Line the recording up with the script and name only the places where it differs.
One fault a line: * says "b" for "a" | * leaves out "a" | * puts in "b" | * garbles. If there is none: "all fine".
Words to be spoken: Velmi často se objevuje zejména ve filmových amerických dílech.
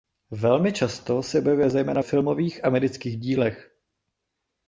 * leaves out "ve"